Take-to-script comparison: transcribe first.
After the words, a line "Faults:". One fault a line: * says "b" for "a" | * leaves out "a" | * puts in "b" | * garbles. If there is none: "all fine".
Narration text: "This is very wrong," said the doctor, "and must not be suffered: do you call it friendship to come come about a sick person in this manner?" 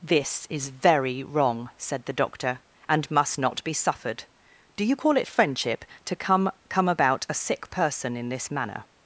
"This is very wrong," said the doctor, "and must not be suffered: do you call it friendship to come come about a sick person in this manner?"
Faults:
all fine